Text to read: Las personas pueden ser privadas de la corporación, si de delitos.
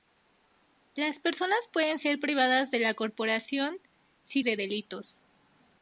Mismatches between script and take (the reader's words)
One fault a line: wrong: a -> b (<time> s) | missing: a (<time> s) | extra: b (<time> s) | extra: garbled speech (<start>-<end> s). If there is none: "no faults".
no faults